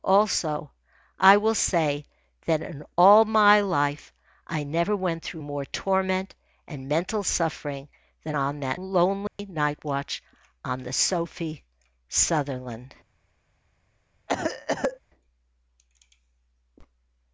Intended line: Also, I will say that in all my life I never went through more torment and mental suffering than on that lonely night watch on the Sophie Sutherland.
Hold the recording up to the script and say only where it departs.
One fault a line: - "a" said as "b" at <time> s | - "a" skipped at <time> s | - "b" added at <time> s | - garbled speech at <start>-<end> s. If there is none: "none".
none